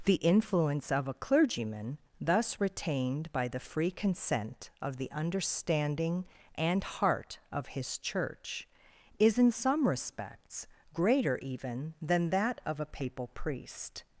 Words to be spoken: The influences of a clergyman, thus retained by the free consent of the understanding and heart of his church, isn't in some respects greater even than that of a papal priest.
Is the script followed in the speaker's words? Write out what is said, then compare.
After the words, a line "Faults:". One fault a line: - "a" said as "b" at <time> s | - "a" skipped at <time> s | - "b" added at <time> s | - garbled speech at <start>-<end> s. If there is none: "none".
The influence of a clergyman, thus retained by the free consent of the understanding and heart of his church, is in some respects greater even than that of a papal priest.
Faults:
- "influences" said as "influence" at 0.1 s
- "isn't" said as "is" at 9.2 s